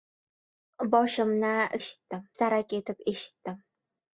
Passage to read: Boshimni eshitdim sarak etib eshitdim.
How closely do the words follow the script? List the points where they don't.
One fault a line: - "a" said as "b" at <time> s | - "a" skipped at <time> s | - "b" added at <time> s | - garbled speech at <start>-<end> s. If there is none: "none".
none